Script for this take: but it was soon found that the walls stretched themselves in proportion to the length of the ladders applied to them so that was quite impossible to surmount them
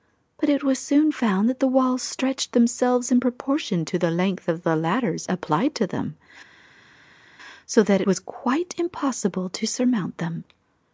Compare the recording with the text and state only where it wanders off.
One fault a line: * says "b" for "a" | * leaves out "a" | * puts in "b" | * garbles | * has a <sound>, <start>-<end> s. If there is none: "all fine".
all fine